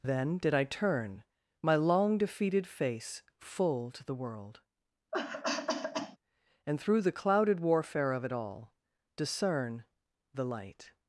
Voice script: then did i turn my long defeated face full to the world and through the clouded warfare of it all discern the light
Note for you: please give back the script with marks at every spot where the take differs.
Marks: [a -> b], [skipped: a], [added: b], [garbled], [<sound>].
then did i turn my long defeated face full to the world [cough] and through the clouded warfare of it all discern the light